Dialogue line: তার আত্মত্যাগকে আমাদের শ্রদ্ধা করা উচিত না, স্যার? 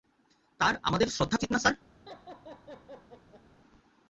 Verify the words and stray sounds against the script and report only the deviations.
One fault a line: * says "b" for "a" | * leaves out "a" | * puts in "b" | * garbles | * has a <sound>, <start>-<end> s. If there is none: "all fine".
* leaves out "আত্মত্যাগকে"
* leaves out "করা"
* has a laugh, 2.1-3.4 s